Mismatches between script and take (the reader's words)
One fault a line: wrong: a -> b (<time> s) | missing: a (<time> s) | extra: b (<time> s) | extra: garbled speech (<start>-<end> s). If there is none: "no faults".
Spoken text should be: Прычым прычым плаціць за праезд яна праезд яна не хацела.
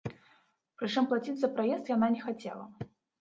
missing: прычым (1.1 s)
missing: праезд яна (2.1 s)